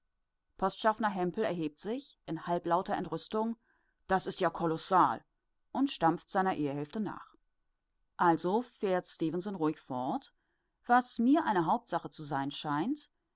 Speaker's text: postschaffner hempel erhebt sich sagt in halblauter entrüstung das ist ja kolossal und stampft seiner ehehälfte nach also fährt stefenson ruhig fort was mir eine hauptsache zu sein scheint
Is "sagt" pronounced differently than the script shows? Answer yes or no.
yes